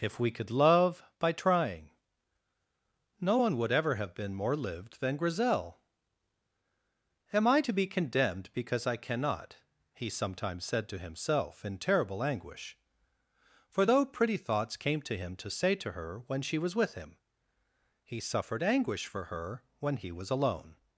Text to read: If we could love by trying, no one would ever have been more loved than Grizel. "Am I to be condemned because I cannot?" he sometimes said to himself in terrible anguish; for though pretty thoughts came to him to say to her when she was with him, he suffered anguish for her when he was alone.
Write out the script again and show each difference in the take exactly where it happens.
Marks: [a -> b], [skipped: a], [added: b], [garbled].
If we could love by trying, no one would ever have been more [loved -> lived] than Grizel. "Am I to be condemned because I cannot?" he sometimes said to himself in terrible anguish; for though pretty thoughts came to him to say to her when she was with him, he suffered anguish for her when he was alone.